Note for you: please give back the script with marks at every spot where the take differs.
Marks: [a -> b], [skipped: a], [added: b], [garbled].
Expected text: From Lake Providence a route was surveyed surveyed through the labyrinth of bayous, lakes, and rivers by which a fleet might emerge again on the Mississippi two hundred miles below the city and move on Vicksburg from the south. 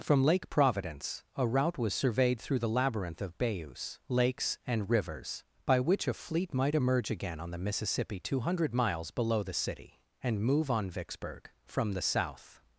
From Lake Providence a route was surveyed [skipped: surveyed] through the labyrinth of bayous, lakes, and rivers by which a fleet might emerge again on the Mississippi two hundred miles below the city and move on Vicksburg from the south.